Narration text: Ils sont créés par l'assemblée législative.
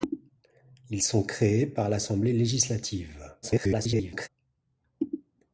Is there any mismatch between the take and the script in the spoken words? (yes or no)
yes